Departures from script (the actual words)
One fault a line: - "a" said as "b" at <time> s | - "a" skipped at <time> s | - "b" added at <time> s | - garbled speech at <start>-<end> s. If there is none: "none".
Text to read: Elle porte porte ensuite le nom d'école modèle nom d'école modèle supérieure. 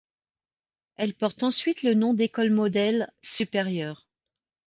- "porte" skipped at 1.4 s
- "nom d'école modèle" skipped at 3.1 s